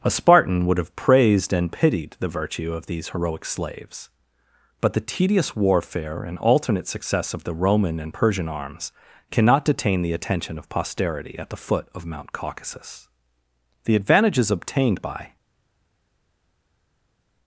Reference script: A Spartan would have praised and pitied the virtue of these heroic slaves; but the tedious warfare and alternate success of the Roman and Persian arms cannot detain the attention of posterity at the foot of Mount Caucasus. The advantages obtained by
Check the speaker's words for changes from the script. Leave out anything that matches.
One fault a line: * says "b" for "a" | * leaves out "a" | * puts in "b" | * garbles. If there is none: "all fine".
all fine